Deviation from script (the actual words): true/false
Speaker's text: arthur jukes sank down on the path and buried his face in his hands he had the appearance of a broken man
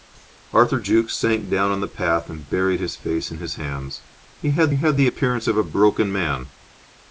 true